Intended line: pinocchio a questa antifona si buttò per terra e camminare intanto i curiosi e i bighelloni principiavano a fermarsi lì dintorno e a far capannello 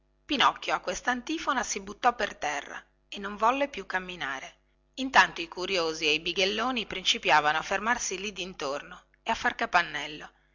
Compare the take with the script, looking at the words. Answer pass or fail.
fail